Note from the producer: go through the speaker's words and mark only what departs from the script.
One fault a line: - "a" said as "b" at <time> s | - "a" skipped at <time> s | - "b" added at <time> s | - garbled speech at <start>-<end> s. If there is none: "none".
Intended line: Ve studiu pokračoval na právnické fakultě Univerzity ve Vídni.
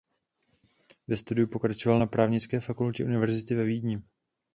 none